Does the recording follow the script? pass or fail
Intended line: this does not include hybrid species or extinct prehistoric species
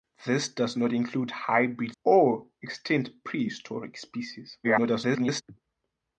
fail